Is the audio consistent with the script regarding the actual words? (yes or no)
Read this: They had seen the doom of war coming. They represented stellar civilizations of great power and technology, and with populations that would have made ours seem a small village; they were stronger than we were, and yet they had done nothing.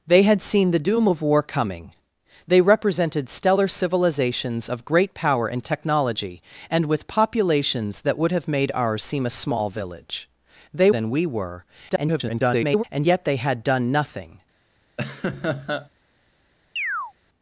no